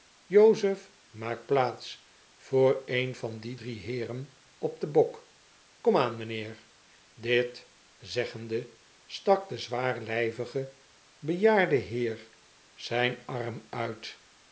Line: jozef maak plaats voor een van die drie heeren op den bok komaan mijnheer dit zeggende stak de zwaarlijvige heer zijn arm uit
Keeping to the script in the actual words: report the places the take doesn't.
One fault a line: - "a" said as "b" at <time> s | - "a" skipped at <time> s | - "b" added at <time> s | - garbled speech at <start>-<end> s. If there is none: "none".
- "bejaarde" added at 11.2 s